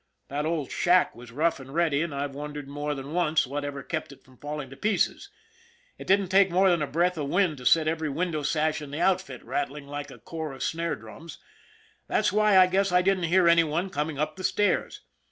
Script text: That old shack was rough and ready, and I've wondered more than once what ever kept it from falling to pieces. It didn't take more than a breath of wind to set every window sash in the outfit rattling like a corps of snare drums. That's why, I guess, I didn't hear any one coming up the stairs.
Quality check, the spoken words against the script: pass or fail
pass